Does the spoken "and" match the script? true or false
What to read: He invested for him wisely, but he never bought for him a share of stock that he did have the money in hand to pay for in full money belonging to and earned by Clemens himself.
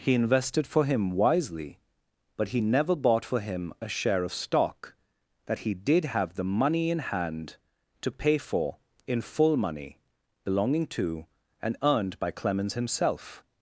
true